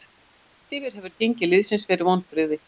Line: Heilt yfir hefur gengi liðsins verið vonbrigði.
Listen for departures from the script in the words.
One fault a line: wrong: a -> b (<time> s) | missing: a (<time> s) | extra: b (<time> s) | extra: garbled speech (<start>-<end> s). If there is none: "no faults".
no faults